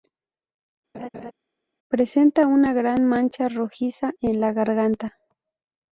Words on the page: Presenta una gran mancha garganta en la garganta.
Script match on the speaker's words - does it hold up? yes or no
no